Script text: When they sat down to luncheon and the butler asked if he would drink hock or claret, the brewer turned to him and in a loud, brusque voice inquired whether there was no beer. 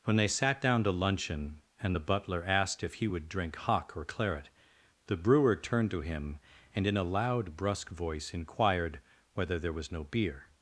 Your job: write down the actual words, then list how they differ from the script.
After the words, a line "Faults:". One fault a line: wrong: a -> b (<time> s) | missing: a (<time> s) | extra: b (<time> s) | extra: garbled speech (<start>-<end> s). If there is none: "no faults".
When they sat down to luncheon and the butler asked if he would drink hock or claret, the brewer turned to him and in a loud, brusque voice inquired whether there was no beer.
Faults:
no faults